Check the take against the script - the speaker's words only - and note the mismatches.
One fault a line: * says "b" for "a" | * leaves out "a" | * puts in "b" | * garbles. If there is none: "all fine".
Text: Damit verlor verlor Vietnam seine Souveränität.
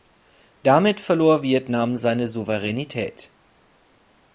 * leaves out "verlor"